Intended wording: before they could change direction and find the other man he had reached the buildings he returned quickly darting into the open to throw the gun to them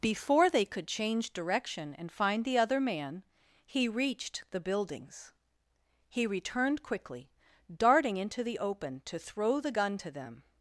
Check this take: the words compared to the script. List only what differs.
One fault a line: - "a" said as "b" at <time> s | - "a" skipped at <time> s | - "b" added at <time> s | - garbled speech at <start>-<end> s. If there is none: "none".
- "had" skipped at 3.9 s